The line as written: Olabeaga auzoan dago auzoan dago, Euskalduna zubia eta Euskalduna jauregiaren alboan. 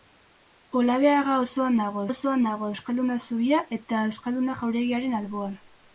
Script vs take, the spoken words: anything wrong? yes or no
no